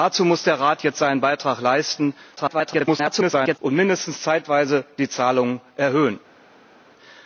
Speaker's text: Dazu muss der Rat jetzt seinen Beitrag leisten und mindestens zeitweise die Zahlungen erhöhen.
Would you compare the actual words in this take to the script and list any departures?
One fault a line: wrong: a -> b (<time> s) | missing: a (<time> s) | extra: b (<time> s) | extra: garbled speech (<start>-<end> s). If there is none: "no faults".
extra: garbled speech (2.4-3.6 s)